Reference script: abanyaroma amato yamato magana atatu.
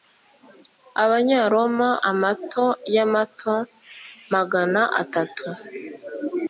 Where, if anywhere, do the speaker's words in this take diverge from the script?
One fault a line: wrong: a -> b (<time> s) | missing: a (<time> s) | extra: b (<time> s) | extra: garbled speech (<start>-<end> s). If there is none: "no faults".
no faults